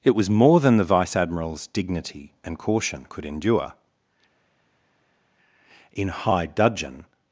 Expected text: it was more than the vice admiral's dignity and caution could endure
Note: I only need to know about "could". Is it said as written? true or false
true